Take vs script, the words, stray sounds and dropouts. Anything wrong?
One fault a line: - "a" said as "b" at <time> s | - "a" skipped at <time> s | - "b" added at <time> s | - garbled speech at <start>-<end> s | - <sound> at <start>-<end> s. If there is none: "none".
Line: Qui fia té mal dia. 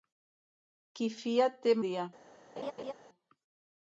- "mal" skipped at 1.8 s
- laugh at 2.6-2.9 s